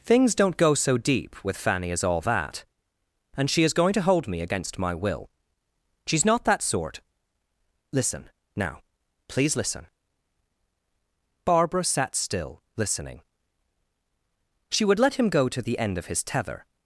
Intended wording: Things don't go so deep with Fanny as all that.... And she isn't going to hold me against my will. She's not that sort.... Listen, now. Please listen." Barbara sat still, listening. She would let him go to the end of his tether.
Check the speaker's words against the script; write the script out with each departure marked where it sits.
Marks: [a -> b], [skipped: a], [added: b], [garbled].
Things don't go so deep with Fanny as all that.... And she [isn't -> is] going to hold me against my will. She's not that sort.... Listen, now. Please listen." Barbara sat still, listening. She would let him go to the end of his tether.